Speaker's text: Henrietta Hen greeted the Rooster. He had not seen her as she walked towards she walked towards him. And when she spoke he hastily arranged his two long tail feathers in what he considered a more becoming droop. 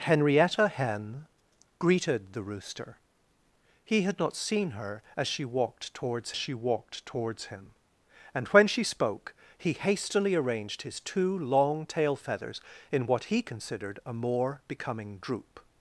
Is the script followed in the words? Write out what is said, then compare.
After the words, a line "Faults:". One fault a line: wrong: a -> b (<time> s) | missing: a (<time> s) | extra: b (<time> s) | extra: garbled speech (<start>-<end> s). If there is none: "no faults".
Henrietta Hen greeted the Rooster. He had not seen her as she walked towards she walked towards him. And when she spoke he hastily arranged his two long tail feathers in what he considered a more becoming droop.
Faults:
no faults